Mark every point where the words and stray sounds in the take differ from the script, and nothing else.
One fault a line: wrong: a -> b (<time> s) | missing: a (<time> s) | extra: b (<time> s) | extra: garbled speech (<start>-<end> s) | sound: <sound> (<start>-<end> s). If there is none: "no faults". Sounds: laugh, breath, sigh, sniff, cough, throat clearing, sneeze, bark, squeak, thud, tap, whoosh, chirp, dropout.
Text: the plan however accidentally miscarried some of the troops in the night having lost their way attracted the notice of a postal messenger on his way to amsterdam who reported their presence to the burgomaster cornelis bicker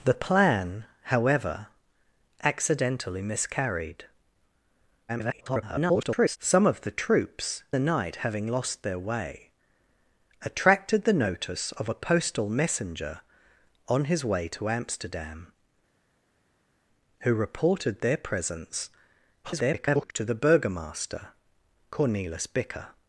extra: garbled speech (5.1-6.4 s)
missing: in (7.6 s)
extra: garbled speech (19.4-20.1 s)